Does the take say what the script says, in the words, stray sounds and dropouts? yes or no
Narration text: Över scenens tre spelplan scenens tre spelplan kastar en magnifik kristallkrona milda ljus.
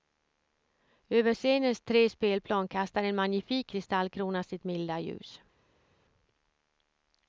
no